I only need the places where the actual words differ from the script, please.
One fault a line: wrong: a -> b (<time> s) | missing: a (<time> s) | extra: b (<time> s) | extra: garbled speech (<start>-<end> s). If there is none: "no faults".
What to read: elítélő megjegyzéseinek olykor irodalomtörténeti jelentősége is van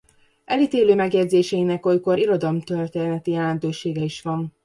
no faults